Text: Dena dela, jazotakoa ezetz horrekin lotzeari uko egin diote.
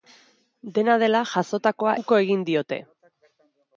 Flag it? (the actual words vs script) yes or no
yes